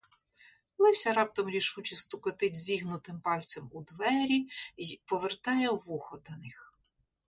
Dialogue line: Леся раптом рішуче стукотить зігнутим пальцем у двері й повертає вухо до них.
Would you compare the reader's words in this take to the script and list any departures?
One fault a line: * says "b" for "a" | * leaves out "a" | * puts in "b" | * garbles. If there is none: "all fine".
all fine